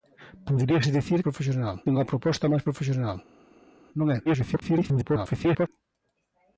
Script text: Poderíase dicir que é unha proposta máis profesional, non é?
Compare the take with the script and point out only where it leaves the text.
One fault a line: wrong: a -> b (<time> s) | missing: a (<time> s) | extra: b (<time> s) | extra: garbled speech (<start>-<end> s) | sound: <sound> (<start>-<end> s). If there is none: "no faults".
wrong: que -> profesional (1.2 s)
extra: garbled speech (4.3-5.7 s)